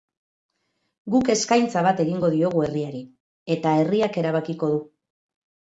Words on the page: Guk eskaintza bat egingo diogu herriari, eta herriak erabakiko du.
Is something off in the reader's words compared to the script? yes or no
no